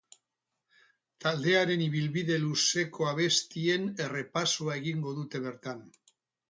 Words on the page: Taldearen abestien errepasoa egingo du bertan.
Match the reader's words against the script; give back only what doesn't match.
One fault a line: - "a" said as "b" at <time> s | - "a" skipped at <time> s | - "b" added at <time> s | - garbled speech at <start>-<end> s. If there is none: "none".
- "ibilbide luzeko" added at 1.9 s
- "du" said as "dute" at 5.2 s